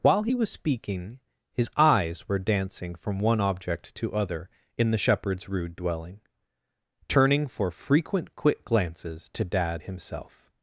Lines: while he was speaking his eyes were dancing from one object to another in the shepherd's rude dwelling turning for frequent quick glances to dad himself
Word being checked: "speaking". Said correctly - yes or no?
yes